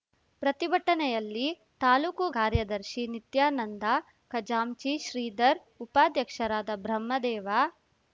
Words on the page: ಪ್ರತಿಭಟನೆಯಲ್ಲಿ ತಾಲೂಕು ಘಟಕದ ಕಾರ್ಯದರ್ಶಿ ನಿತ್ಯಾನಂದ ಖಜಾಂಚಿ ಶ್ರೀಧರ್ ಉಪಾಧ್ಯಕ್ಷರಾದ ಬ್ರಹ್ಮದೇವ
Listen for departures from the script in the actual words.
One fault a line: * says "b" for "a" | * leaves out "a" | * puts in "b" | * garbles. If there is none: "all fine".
* leaves out "ಘಟಕದ"